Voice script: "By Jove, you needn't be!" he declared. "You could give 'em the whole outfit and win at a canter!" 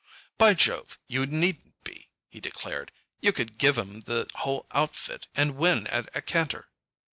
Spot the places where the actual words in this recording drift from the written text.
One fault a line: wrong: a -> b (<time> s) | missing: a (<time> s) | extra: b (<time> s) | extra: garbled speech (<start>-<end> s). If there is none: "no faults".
no faults